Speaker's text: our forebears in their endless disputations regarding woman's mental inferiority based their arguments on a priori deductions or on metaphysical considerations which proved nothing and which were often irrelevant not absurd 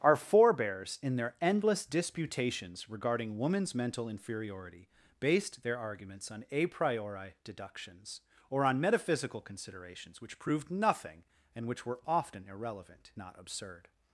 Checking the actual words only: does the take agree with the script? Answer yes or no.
yes